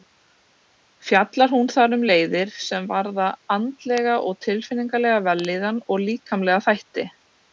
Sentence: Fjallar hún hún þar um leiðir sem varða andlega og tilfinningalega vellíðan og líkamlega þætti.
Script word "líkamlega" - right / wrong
right